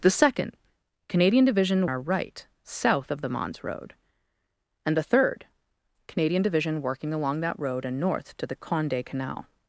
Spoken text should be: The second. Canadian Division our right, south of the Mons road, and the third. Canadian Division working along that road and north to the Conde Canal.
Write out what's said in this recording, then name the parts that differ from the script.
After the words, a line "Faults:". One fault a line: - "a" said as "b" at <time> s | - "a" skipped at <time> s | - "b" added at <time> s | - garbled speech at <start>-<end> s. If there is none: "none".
The second. Canadian Division our right, south of the Mons road, and the third. Canadian Division working along that road and north to the Conde Canal.
Faults:
none